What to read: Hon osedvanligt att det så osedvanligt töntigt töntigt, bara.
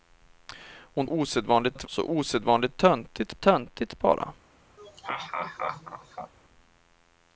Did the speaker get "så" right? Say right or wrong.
right